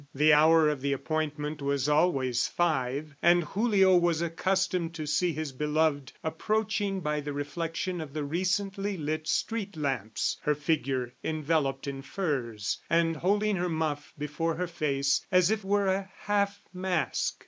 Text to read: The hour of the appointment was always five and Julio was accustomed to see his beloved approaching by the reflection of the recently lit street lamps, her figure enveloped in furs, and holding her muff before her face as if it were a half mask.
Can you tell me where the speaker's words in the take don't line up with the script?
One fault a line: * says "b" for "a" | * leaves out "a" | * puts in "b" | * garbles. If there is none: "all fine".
* leaves out "it"